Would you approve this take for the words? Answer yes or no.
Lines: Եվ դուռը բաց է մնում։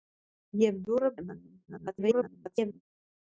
no